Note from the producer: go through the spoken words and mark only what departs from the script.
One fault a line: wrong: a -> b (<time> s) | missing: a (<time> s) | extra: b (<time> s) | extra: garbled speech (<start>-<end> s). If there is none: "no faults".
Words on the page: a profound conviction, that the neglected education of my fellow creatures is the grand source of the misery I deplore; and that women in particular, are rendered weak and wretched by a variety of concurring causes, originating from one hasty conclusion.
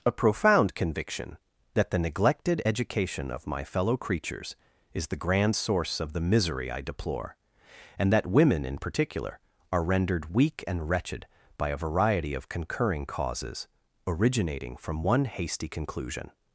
no faults